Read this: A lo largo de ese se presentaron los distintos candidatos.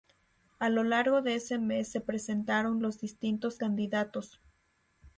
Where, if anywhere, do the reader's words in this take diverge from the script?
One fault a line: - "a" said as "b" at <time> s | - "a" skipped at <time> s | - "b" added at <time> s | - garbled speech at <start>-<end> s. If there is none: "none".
- "mes" added at 1.6 s